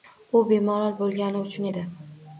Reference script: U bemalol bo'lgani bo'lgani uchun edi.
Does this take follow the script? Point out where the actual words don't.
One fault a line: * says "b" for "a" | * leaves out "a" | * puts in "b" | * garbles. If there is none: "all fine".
* leaves out "bo'lgani"